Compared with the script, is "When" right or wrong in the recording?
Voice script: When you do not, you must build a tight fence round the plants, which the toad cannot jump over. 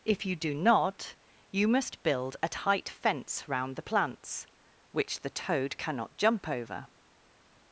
wrong